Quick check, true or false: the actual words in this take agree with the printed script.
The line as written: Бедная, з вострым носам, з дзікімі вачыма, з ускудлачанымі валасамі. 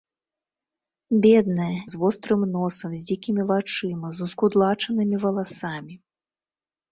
true